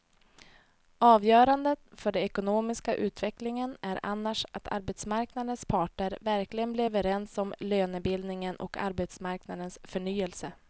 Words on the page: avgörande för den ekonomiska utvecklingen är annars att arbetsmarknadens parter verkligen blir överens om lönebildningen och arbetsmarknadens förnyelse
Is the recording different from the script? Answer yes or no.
no